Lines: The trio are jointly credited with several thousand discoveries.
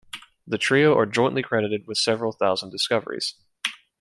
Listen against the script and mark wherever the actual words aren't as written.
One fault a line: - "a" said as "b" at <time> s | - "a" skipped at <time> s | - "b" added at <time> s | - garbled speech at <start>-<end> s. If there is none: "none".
none